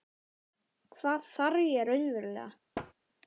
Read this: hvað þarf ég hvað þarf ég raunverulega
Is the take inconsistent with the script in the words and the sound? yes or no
yes